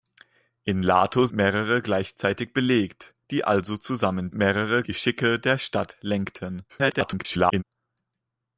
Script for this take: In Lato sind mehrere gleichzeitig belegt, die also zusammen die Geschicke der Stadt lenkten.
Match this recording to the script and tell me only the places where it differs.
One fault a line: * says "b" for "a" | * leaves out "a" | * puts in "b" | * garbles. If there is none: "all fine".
* leaves out "sind"
* says "mehrere" for "die"
* garbles